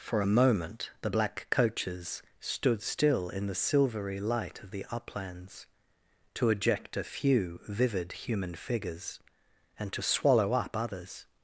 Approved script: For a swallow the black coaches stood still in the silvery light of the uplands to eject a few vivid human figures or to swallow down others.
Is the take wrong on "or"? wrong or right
wrong